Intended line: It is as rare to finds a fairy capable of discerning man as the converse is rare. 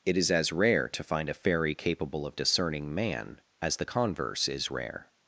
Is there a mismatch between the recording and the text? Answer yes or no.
yes